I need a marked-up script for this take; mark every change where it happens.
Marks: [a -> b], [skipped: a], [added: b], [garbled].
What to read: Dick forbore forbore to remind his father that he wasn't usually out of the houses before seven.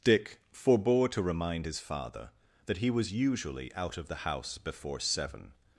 Dick forbore [skipped: forbore] to remind his father that he [wasn't -> was] usually out of the [houses -> house] before seven.